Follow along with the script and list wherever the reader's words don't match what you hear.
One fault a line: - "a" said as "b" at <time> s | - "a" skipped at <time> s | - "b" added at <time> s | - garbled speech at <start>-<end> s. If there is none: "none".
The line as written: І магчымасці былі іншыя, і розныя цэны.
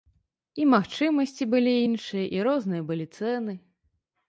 - "былі" added at 2.9 s